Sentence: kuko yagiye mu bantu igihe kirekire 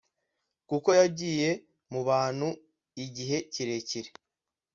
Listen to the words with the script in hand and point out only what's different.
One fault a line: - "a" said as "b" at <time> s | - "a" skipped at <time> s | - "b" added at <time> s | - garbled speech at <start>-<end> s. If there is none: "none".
none